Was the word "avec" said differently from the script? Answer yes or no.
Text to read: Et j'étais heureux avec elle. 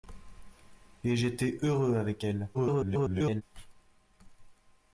no